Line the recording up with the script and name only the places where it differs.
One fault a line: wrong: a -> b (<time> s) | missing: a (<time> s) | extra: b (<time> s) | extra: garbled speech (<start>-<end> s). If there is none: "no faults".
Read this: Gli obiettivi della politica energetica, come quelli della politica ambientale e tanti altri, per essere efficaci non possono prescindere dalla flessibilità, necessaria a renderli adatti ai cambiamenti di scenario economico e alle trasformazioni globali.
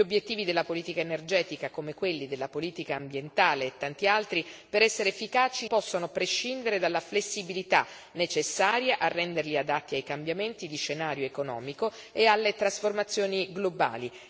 missing: non (5.7 s)